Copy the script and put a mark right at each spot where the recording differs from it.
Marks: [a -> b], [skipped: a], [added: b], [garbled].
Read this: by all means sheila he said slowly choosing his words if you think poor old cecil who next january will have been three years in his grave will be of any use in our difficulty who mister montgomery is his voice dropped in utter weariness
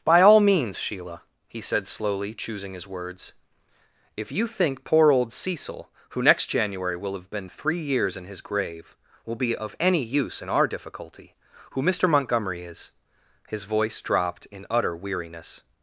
by all means sheila he said slowly choosing his words if you think poor old cecil who next january will have been three years in his grave will be of any use in our difficulty who mister montgomery is his voice dropped in utter weariness